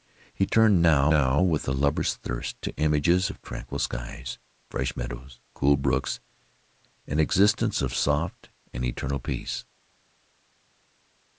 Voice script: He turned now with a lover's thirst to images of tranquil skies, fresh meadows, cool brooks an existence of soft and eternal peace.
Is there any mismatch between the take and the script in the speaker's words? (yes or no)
yes